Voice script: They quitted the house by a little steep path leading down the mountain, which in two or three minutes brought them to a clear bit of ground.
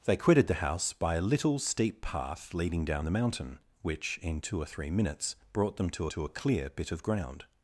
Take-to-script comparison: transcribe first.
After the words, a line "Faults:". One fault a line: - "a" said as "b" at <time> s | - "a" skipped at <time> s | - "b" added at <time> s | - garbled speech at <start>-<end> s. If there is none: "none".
They quitted the house by a little steep path leading down the mountain, which in two or three minutes brought them to to a clear bit of ground.
Faults:
- "to" added at 6.1 s